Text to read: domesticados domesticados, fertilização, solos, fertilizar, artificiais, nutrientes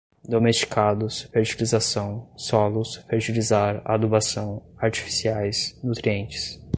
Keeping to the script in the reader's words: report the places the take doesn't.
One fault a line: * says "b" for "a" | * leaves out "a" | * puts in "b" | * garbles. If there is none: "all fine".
* leaves out "domesticados"
* puts in "adubação"